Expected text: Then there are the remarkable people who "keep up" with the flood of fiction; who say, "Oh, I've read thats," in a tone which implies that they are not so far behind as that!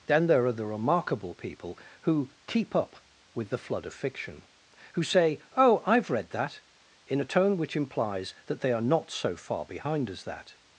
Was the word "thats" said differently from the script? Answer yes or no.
yes